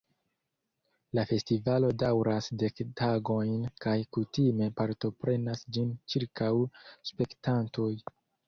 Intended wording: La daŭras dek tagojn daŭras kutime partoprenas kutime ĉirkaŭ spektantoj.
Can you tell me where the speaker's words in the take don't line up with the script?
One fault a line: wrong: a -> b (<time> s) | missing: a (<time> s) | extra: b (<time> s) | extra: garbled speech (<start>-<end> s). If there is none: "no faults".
extra: festivalo (1.3 s)
wrong: daŭras -> kaj (3.9 s)
wrong: kutime -> ĝin (5.8 s)